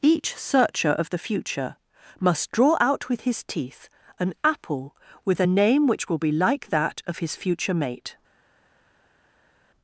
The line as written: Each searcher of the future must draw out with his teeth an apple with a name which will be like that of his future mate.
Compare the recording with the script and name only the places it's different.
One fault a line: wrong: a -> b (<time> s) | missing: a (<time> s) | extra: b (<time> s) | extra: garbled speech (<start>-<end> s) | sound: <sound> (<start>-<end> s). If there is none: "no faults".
no faults